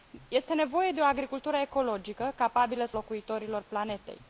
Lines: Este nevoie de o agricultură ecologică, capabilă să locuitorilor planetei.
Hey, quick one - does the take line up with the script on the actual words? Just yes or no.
yes